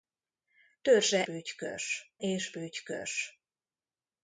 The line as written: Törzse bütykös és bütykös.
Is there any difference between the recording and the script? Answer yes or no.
no